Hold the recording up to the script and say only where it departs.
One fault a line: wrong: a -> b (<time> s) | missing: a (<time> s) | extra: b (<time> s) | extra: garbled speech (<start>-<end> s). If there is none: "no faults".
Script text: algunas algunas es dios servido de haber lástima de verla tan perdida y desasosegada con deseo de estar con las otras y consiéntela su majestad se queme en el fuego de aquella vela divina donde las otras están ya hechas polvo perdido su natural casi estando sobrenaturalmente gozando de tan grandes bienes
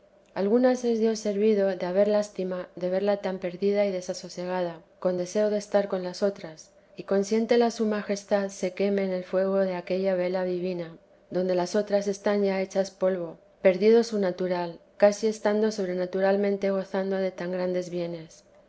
missing: algunas (0.8 s)